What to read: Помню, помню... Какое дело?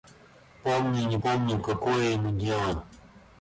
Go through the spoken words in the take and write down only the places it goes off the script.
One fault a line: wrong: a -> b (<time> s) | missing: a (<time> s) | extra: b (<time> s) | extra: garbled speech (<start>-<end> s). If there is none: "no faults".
extra: не (1.1 s)
extra: ему (2.1 s)